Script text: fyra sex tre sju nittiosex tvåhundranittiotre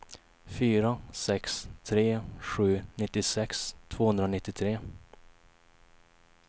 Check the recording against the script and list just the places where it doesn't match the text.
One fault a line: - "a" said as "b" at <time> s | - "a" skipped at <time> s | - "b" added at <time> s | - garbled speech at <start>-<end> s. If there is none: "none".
none